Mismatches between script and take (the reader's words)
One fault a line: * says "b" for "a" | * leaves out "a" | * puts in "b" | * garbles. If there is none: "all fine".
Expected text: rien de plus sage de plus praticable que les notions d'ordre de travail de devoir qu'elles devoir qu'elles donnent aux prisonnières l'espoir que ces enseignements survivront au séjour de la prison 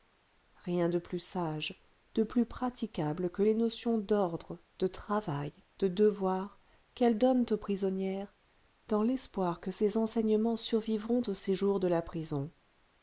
* leaves out "devoir qu'elles"
* puts in "dans"